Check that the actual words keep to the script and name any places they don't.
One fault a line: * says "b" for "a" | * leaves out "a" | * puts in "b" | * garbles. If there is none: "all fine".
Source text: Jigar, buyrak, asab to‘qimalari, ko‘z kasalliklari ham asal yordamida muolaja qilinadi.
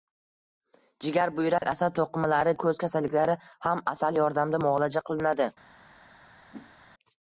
all fine